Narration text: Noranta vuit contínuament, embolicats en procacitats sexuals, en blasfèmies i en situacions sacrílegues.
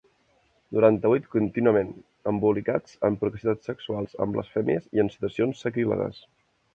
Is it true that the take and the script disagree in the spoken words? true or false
false